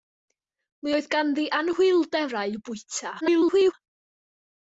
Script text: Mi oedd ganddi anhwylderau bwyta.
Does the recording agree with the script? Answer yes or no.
no